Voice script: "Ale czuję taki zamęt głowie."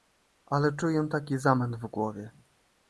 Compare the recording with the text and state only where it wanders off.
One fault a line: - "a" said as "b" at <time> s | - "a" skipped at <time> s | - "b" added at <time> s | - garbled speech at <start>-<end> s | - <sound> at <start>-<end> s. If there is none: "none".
- "w" added at 1.8 s